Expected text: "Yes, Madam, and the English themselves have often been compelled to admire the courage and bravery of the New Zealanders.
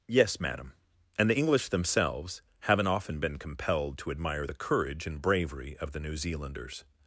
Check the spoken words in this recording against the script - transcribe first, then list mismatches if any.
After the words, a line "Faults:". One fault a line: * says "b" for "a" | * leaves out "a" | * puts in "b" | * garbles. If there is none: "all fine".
"Yes, Madam, and the English themselves haven't often been compelled to admire the courage and bravery of the New Zealanders.
Faults:
* says "haven't" for "have"